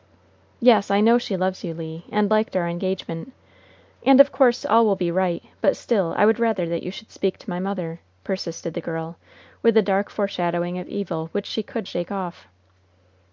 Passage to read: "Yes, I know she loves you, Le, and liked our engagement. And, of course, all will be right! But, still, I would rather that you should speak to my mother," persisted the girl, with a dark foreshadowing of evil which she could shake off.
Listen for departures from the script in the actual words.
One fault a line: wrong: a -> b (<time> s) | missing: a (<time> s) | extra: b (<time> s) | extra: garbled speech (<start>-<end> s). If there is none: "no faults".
no faults